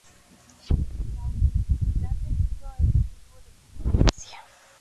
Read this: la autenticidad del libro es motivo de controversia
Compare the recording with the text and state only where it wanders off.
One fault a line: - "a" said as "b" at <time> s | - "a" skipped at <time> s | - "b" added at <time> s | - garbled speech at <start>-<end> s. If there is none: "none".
none